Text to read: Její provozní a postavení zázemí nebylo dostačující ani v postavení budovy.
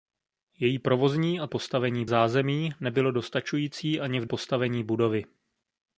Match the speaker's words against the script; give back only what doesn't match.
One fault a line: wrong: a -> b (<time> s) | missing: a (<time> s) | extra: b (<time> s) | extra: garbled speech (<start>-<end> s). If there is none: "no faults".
no faults